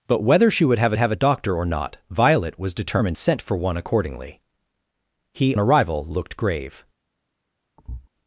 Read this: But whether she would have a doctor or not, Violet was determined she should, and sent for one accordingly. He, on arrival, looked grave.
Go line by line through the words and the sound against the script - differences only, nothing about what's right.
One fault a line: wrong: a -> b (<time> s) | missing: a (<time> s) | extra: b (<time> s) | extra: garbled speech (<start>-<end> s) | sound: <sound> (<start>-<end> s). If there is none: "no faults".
extra: have (1.0 s)
missing: she should and (3.2 s)
missing: on (5.6 s)
sound: thud (7.8-8.1 s)